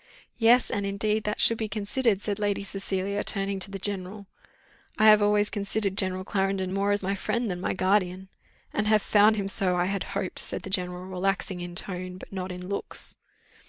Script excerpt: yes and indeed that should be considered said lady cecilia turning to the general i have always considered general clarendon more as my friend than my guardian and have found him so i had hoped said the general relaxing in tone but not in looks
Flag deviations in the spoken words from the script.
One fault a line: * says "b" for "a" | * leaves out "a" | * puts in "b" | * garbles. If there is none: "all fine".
all fine